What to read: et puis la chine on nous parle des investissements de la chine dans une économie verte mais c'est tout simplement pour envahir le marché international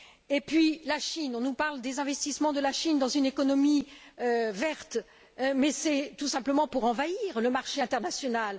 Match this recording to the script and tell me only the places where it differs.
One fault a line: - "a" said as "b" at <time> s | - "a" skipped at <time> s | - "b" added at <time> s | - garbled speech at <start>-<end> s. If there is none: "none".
none